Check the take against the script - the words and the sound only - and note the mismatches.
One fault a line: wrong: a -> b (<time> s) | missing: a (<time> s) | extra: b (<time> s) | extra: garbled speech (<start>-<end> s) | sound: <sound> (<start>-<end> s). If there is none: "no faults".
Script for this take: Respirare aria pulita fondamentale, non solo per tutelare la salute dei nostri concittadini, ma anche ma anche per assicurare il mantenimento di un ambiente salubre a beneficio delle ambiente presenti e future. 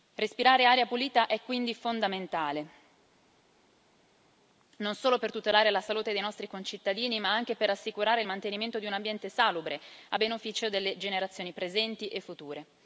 extra: è quindi (1.3 s)
missing: ma anche (7.5 s)
wrong: ambiente -> generazioni (11.0 s)